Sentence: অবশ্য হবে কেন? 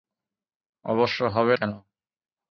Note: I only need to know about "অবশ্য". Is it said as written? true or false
true